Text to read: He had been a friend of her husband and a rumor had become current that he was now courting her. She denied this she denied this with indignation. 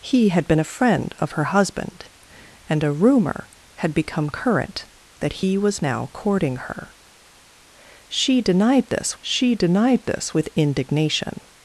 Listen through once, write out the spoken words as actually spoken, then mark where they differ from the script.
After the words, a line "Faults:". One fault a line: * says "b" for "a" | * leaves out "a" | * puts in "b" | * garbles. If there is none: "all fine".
He had been a friend of her husband and a rumor had become current that he was now courting her. She denied this she denied this with indignation.
Faults:
all fine